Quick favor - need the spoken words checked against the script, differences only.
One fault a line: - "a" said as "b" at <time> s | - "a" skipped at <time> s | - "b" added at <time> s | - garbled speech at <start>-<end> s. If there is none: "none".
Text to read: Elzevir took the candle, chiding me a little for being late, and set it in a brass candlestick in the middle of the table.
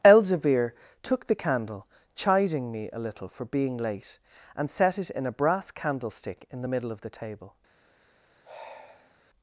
none